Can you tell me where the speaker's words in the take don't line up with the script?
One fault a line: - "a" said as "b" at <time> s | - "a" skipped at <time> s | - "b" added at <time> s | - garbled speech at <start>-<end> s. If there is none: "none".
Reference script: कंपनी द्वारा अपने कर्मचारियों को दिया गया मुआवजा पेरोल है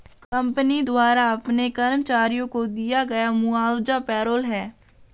none